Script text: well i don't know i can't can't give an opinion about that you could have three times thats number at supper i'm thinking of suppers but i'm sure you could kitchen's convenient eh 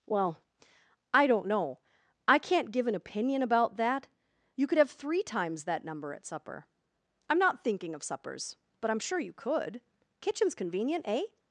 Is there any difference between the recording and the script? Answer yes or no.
yes